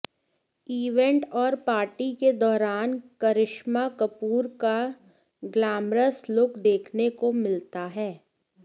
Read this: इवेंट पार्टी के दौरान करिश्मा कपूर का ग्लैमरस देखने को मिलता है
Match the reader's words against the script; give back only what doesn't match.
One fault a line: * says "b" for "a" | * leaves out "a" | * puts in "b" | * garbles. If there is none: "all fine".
* puts in "और"
* puts in "लुक"